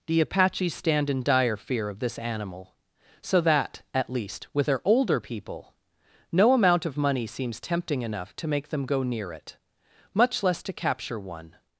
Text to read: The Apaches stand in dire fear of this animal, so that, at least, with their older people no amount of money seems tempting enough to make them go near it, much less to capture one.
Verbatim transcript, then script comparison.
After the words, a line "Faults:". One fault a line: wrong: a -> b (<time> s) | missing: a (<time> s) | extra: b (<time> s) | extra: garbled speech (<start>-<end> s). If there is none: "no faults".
The Apaches stand in dire fear of this animal, so that, at least, with their older people no amount of money seems tempting enough to make them go near it, much less to capture one.
Faults:
no faults